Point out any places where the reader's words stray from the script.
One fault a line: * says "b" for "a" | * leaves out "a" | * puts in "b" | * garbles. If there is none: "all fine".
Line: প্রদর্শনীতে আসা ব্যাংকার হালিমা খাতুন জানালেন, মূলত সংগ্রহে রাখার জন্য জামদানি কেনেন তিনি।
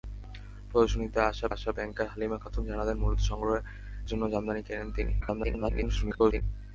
* puts in "আসা"
* leaves out "রাখার"
* garbles